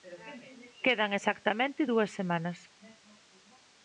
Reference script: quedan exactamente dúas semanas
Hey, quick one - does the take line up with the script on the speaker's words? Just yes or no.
yes